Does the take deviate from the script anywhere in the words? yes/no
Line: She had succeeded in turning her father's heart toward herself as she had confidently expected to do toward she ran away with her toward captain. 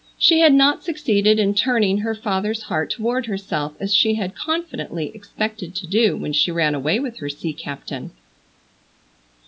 yes